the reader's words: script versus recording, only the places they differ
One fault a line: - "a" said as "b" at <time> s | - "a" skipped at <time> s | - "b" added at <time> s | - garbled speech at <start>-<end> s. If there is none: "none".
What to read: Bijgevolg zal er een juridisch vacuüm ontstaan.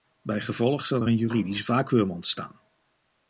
none